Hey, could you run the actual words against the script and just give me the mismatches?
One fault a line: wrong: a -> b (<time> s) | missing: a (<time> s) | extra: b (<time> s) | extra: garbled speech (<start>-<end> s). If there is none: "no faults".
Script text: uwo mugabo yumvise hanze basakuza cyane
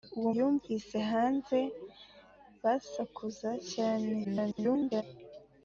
missing: mugabo (0.3 s)
extra: garbled speech (4.2-5.0 s)